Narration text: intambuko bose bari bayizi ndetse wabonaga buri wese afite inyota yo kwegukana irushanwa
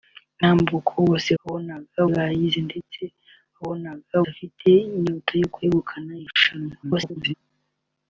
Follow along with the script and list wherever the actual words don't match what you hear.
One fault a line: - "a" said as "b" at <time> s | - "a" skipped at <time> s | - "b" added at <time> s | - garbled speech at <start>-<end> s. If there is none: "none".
- "bari" said as "wabonaga" at 1.4 s
- "buri wese" skipped at 4.2 s
- garbled speech at 6.8-7.3 s